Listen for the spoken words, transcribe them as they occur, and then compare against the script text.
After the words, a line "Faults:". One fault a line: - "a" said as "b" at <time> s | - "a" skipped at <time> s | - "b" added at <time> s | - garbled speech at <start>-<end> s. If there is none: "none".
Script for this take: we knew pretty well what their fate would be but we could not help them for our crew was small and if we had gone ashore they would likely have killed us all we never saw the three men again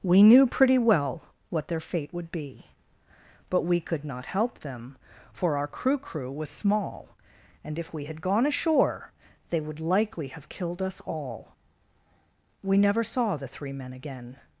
we knew pretty well what their fate would be but we could not help them for our crew crew was small and if we had gone ashore they would likely have killed us all we never saw the three men again
Faults:
- "crew" added at 6.0 s